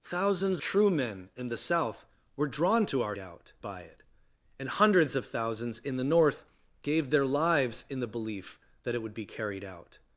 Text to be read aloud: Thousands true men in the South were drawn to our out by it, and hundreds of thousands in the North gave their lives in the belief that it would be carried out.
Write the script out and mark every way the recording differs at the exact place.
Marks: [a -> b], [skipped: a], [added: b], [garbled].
Thousands true men in the South were drawn to our out by it, and hundreds of thousands in the North gave their lives in the belief that it would be carried out.